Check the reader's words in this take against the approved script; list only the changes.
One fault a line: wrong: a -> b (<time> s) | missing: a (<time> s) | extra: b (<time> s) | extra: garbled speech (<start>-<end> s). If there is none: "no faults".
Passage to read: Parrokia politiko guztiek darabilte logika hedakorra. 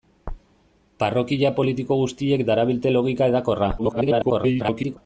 extra: garbled speech (3.8-5.0 s)